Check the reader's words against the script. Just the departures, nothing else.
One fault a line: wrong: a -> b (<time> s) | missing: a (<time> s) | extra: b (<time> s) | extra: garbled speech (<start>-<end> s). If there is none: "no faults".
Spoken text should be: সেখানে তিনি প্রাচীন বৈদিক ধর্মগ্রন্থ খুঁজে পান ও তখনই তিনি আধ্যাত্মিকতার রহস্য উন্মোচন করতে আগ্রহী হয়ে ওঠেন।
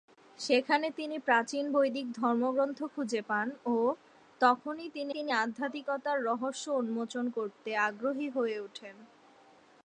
extra: তিনি (5.1 s)